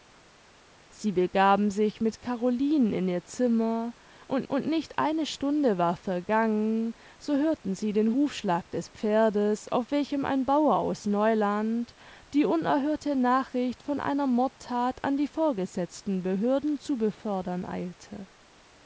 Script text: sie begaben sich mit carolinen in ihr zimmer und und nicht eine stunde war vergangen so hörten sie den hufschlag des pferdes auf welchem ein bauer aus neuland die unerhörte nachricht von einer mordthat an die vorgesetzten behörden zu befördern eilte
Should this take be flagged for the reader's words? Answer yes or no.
no